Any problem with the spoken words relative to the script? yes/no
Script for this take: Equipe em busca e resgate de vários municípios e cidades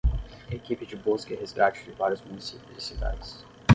yes